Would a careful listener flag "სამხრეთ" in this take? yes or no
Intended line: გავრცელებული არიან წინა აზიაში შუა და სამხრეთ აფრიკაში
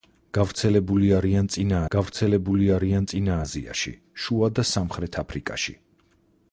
no